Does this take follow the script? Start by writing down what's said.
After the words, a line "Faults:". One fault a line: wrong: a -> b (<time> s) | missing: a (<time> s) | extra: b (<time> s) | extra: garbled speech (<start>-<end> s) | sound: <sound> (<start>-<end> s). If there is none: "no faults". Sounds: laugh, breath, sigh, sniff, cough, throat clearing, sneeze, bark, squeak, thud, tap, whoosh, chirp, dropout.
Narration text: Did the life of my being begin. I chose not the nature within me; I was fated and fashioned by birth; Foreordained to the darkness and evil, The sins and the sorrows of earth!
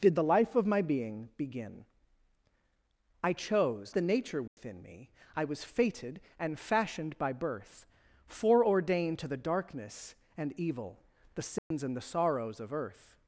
Did the life of my being begin. I chose the nature within me; I was fated and fashioned by birth; Foreordained to the darkness and evil, The sins and the sorrows of earth!
Faults:
missing: not (4.0 s)
sound: dropout (4.5-4.6 s)
sound: dropout (11.6-11.7 s)